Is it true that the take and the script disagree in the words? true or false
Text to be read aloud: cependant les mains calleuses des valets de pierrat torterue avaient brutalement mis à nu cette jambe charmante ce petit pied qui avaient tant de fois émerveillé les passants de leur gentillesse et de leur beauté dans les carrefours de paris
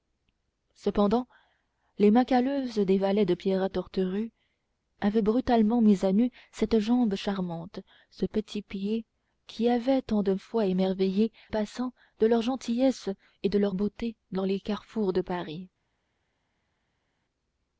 true